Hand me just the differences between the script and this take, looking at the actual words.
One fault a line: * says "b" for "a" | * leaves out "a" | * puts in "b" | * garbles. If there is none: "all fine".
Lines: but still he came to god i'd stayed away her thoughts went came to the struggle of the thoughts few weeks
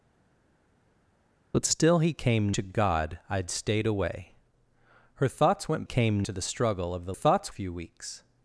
all fine